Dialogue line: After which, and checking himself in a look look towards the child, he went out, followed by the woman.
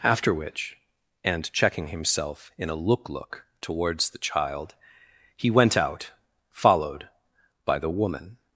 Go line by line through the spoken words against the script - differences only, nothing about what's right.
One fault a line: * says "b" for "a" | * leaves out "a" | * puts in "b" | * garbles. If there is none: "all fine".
all fine